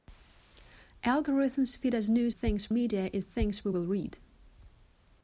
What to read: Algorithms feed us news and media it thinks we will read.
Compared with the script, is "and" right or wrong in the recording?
wrong